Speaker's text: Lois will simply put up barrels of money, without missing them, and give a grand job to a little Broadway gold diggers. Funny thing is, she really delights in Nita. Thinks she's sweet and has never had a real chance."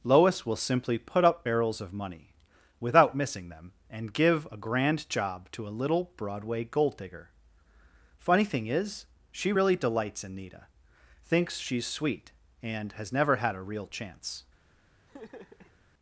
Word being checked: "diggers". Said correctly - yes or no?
no